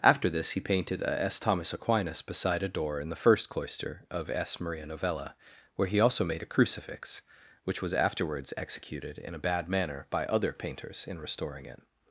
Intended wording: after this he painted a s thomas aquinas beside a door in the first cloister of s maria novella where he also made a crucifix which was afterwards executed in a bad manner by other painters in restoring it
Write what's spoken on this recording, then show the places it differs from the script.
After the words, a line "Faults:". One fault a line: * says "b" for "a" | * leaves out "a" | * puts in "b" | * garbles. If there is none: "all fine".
after this he painted a s thomas aquinas beside a door in the first cloister of s maria novella where he also made a crucifix which was afterwards executed in a bad manner by other painters in restoring it
Faults:
all fine